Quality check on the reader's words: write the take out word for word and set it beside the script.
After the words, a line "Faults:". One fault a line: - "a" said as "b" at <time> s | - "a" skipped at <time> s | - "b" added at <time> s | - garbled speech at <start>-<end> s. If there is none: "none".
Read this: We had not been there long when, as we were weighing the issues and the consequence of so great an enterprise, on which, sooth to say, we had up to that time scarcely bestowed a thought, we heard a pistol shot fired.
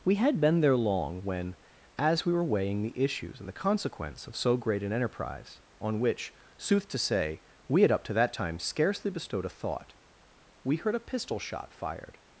We had been there long when, as we were weighing the issues and the consequence of so great an enterprise, on which, sooth to say, we had up to that time scarcely bestowed a thought, we heard a pistol shot fired.
Faults:
- "not" skipped at 0.4 s